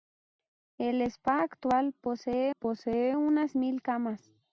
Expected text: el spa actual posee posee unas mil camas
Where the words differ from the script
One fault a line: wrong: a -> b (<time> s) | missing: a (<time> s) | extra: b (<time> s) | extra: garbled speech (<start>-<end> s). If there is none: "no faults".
no faults